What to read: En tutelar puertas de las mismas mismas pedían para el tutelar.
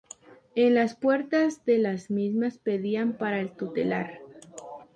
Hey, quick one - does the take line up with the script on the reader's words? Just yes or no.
no